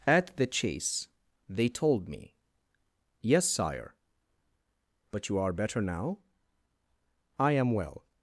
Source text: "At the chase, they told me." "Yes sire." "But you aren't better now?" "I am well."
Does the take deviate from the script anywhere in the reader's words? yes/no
yes